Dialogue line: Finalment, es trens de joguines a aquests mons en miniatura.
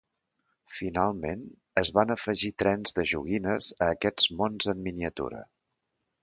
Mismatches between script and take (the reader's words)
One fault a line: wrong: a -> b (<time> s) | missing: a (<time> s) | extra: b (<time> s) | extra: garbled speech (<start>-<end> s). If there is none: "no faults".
extra: van afegir (2.0 s)